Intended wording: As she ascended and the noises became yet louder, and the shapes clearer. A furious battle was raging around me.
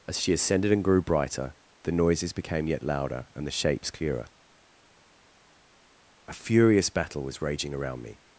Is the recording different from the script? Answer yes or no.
yes